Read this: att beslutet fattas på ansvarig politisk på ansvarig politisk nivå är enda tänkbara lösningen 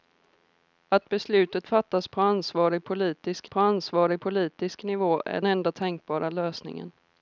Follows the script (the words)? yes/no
yes